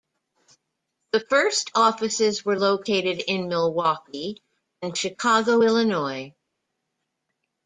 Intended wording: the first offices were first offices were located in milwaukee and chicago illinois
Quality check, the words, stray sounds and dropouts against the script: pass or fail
fail